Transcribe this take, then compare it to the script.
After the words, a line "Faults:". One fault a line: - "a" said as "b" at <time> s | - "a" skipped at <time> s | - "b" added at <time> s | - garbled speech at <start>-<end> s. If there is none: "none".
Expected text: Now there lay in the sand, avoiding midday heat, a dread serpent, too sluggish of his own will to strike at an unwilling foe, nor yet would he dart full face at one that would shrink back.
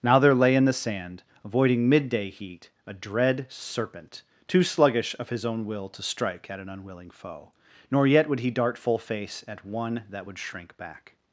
Now there lay in the sand, avoiding midday heat, a dread serpent, too sluggish of his own will to strike at an unwilling foe, nor yet would he dart full face at one that would shrink back.
Faults:
none